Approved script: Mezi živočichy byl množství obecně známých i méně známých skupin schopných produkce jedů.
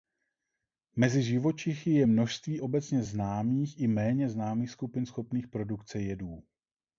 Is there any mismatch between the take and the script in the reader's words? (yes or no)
yes